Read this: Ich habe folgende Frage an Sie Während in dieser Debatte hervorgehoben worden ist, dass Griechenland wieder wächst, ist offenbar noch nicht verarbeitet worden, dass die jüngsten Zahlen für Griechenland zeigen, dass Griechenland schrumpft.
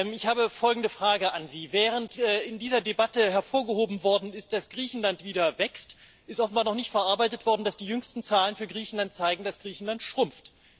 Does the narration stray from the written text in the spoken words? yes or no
no